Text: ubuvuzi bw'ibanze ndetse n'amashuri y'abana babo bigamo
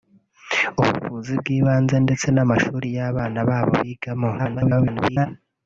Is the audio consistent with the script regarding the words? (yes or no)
no